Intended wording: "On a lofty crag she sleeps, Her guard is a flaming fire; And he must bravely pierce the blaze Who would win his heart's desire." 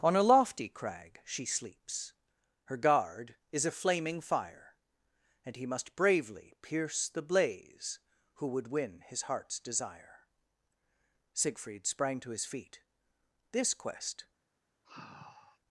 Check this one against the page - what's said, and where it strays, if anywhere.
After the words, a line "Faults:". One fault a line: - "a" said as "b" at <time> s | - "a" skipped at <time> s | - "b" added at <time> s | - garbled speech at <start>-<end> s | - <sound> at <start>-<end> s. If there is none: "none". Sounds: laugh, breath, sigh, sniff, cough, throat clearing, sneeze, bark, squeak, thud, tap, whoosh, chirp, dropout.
"On a lofty crag she sleeps, Her guard is a flaming fire; And he must bravely pierce the blaze Who would win his heart's desire." Siegfried sprang to his feet. "This quest
Faults:
- "Siegfried sprang to his feet This quest" added at 11.3 s
- sigh at 14.8-15.6 s